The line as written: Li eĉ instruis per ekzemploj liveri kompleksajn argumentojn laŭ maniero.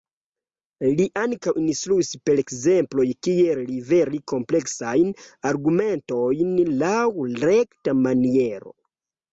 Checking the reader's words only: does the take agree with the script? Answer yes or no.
no